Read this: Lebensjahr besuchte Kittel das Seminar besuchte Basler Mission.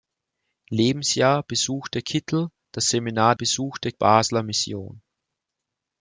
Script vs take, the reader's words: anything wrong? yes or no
no